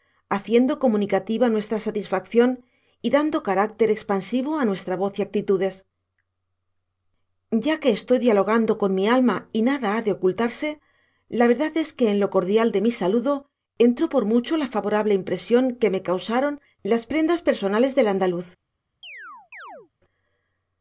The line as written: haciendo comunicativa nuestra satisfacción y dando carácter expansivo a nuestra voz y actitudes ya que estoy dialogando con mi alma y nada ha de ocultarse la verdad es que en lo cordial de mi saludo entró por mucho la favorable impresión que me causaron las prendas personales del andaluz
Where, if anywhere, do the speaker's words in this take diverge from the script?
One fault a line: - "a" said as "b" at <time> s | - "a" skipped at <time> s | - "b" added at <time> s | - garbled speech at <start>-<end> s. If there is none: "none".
none